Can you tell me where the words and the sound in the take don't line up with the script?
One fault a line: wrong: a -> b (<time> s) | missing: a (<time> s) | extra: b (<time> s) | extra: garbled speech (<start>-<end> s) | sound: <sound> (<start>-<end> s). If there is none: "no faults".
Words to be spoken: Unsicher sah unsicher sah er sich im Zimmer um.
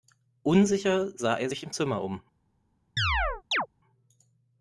missing: unsicher sah (1.4 s)
sound: chirp (3.0-3.7 s)